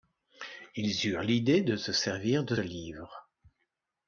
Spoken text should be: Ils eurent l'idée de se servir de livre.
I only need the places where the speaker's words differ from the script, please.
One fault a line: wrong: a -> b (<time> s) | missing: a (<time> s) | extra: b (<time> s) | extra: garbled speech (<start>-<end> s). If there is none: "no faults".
no faults